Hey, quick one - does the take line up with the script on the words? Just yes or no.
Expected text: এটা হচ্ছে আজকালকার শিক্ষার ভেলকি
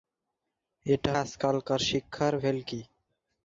no